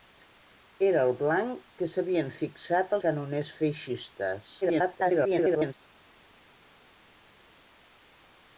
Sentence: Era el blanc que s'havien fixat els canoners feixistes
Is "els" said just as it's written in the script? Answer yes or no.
no